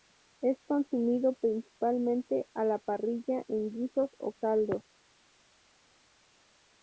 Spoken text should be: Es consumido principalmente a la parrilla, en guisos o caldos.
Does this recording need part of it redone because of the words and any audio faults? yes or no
no